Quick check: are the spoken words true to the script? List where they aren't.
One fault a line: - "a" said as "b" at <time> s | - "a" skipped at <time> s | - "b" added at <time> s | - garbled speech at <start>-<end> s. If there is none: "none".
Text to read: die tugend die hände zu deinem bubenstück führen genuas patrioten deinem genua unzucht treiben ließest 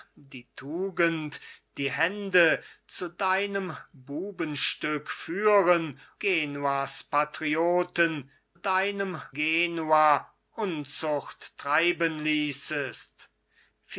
none